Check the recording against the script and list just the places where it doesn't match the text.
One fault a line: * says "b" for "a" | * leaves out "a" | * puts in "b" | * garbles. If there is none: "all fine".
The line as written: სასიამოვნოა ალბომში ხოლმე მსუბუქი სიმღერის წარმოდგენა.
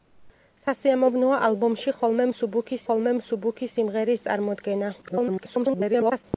* puts in "ხოლმე მსუბუქი"
* garbles